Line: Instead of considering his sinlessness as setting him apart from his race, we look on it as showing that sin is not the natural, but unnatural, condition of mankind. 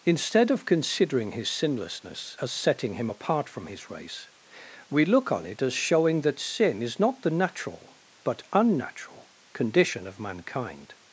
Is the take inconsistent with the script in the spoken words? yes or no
no